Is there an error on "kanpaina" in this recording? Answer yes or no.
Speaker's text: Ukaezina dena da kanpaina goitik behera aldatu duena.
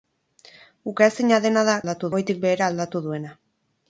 yes